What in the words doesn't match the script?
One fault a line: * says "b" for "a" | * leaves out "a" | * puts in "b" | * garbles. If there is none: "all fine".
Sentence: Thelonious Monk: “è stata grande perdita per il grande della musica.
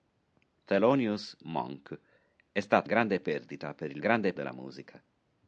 all fine